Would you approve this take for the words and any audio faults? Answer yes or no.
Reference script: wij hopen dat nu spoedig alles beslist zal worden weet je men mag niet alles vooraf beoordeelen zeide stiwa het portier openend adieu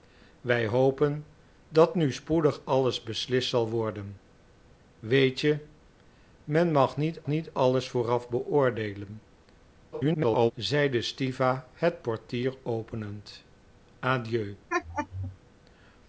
no